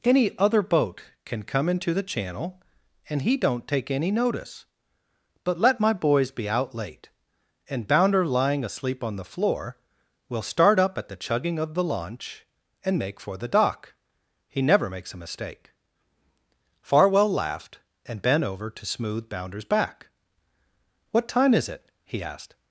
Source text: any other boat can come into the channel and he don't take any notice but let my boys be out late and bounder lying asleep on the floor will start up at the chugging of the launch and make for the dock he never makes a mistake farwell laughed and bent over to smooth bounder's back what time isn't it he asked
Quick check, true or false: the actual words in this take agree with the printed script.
false